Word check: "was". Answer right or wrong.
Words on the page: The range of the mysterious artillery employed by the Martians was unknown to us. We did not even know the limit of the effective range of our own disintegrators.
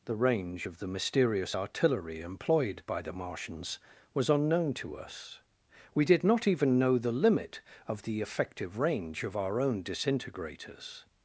right